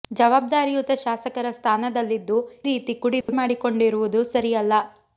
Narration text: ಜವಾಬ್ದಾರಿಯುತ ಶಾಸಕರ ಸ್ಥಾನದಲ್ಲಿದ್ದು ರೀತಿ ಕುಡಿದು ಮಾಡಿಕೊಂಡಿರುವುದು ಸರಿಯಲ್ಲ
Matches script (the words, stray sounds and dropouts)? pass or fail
fail